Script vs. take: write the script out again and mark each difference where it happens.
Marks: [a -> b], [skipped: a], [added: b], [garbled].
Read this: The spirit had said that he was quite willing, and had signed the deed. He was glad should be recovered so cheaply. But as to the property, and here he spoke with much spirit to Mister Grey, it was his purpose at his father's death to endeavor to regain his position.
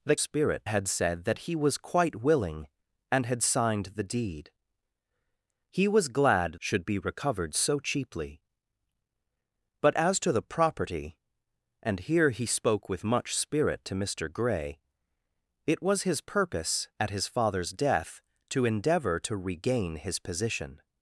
The spirit had said that he was quite willing, and had signed the deed. He was glad should be recovered so cheaply. But as to the property, and here he spoke with much spirit to Mister Grey, it was his purpose at his father's death to endeavor to regain his position.